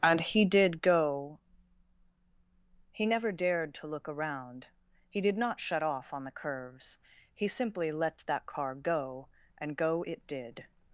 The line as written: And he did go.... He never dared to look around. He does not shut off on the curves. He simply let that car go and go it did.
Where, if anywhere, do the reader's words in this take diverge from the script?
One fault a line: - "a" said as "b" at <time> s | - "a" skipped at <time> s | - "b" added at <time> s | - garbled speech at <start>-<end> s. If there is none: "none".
- "does" said as "did" at 5.2 s